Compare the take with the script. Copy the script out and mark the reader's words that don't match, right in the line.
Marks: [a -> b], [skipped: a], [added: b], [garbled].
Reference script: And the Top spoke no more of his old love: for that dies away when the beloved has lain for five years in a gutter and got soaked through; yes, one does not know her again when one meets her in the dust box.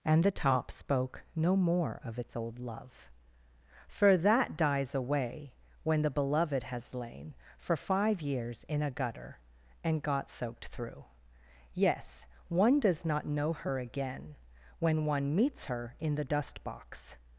And the Top spoke no more of [his -> its] old love: for that dies away when the beloved has lain for five years in a gutter and got soaked through; yes, one does not know her again when one meets her in the dust box.